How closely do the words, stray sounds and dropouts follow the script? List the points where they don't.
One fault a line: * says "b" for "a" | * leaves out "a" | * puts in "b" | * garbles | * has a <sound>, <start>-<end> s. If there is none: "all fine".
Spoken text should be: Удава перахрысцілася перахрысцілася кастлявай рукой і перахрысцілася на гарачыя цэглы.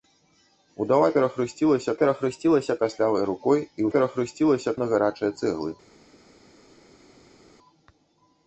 all fine